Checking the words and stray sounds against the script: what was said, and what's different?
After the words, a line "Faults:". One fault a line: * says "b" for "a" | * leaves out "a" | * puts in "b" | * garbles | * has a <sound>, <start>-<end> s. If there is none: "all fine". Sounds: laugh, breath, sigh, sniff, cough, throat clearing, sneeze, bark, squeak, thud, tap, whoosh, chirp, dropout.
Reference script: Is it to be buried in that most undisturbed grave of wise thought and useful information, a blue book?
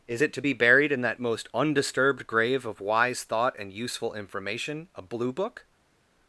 Is it to be buried in that most undisturbed grave of wise thought and useful information, a blue book?
Faults:
all fine